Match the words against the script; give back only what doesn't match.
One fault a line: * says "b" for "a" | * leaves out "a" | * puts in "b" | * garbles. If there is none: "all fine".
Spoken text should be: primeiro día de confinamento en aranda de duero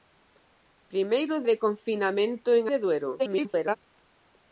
* leaves out "día"
* leaves out "aranda"
* garbles